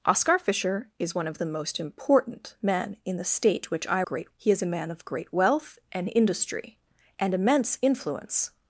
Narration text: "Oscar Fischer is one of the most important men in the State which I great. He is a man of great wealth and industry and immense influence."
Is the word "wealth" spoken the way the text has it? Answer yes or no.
yes